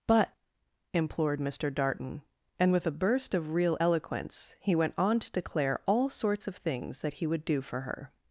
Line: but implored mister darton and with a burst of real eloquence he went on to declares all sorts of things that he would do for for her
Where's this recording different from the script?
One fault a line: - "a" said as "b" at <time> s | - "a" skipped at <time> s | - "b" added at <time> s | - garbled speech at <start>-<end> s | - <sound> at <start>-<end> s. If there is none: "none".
- "declares" said as "declare" at 5.3 s
- "for" skipped at 7.8 s